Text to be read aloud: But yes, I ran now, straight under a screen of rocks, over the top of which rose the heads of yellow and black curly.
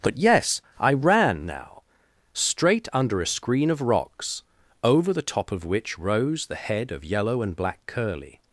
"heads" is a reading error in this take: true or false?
true